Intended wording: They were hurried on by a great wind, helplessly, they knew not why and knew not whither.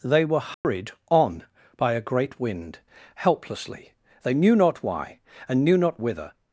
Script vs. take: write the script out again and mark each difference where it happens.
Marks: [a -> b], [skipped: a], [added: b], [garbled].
They were hurried on by a great wind, helplessly, they knew not why and knew not whither.